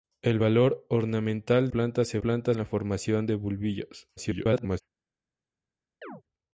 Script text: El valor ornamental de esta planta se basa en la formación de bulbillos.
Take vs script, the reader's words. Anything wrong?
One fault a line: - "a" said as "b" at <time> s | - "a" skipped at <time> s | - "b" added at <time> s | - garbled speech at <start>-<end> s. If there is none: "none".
- "de esta" skipped at 1.7 s
- "basa" said as "planta" at 2.2 s
- garbled speech at 4.2-4.8 s